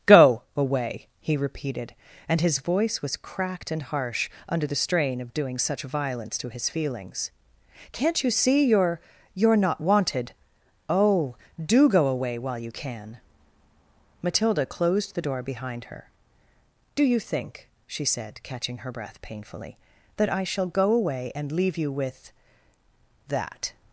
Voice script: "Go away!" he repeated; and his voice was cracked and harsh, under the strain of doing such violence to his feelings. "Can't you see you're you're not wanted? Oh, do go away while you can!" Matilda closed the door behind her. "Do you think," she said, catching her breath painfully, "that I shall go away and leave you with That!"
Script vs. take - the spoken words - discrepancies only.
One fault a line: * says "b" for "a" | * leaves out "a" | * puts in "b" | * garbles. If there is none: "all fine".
all fine